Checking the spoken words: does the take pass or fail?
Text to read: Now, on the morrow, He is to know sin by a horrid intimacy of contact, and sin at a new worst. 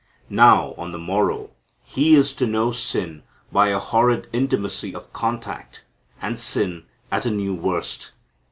pass